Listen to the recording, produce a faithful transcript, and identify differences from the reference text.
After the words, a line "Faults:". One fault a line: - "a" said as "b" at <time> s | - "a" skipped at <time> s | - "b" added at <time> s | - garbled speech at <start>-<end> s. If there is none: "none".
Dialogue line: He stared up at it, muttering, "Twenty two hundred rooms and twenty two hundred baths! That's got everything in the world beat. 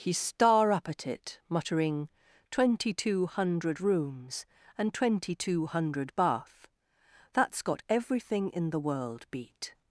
He star up at it, muttering, "Twenty two hundred rooms and twenty two hundred bath! That's got everything in the world beat.
Faults:
- "stared" said as "star" at 0.1 s
- "baths" said as "bath" at 6.2 s